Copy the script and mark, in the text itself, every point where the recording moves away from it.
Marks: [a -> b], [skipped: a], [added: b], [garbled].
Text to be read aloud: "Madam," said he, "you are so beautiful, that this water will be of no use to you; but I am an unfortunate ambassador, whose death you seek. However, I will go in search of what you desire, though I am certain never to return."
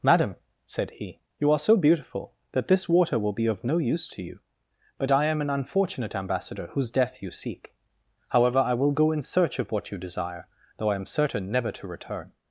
"Madam," said he, "you are so beautiful, that this water will be of no use to you; but I am an unfortunate ambassador, whose death you seek. However, I will go in search of what you desire, though I am certain never to return."